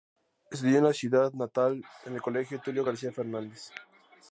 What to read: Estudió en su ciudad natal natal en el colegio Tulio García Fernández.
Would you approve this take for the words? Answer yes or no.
no